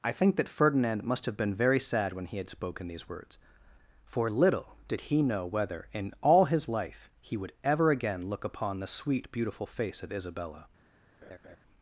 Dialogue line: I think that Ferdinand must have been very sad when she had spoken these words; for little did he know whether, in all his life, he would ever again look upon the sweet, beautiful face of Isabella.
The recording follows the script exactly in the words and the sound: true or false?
false